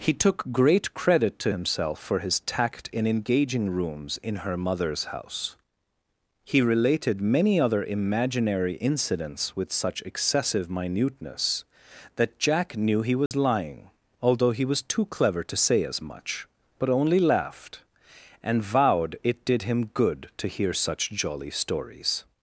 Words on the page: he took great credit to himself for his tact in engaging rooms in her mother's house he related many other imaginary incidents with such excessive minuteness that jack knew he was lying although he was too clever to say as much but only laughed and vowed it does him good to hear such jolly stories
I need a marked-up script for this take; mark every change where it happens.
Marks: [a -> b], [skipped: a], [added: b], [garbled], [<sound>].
he took great credit to himself for his tact in engaging rooms in her mother's house he related many other imaginary incidents with such excessive minuteness that jack knew he was [dropout] lying although he was too clever to say as much but only laughed and vowed it [does -> did] him good to hear such jolly stories